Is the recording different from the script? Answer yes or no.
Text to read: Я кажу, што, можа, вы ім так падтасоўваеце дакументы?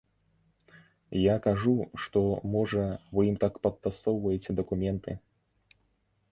no